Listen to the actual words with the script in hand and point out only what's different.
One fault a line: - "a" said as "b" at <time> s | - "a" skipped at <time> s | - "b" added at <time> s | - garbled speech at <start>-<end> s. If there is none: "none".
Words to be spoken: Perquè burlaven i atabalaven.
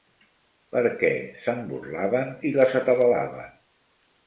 - "se'n" added at 1.4 s
- "les" added at 2.6 s